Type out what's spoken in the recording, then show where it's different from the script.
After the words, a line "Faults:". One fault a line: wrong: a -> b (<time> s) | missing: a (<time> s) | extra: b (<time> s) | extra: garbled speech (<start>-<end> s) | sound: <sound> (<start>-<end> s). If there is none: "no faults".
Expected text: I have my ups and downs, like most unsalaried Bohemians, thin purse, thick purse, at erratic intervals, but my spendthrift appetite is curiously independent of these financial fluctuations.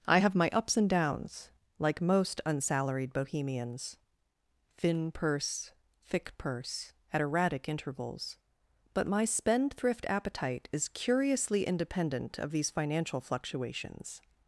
I have my ups and downs, like most unsalaried Bohemians, thin purse, thick purse, at erratic intervals, but my spendthrift appetite is curiously independent of these financial fluctuations.
Faults:
no faults